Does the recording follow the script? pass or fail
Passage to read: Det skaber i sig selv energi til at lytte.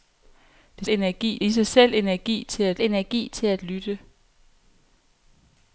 fail